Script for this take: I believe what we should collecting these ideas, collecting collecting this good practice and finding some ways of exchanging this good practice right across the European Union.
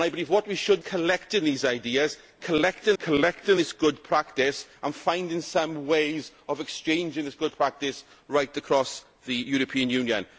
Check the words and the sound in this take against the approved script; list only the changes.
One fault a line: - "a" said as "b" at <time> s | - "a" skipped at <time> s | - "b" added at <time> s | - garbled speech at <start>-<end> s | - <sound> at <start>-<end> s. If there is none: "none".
none